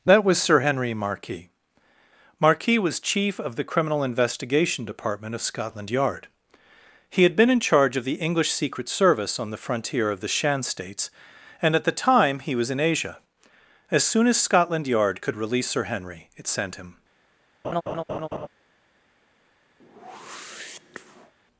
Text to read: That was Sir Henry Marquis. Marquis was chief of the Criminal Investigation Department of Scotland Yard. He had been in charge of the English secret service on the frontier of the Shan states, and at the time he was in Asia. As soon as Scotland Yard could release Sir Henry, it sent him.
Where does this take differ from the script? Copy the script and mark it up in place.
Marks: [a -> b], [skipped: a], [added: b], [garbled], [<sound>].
That was Sir Henry Marquis. Marquis was chief of the Criminal Investigation Department of Scotland Yard. He had been in charge of the English secret service on the frontier of the Shan states, and at the time he was in Asia. As soon as Scotland Yard could release Sir Henry, it sent him. [laugh] [whoosh]